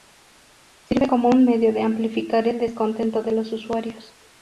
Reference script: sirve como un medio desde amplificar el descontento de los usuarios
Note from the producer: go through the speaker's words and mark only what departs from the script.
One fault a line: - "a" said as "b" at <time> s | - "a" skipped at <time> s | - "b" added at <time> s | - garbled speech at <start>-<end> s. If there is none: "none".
- "desde" said as "de" at 1.7 s